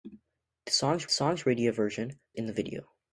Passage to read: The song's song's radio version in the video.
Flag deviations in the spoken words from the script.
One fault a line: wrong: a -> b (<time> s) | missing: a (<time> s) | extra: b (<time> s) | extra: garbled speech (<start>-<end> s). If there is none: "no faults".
no faults